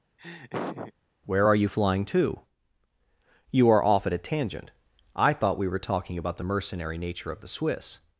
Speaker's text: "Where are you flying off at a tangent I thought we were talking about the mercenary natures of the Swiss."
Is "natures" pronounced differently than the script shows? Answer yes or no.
yes